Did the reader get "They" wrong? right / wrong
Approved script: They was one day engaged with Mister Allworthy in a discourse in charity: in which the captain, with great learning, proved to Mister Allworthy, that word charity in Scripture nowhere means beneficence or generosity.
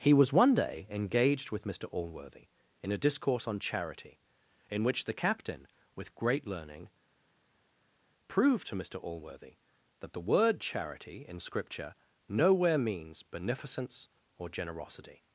wrong